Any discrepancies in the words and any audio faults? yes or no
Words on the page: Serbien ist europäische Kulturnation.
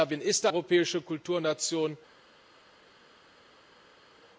no